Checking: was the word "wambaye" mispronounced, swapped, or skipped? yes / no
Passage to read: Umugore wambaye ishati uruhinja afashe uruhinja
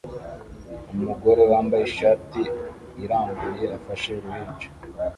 no